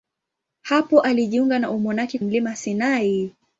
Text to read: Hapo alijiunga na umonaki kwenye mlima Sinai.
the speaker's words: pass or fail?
fail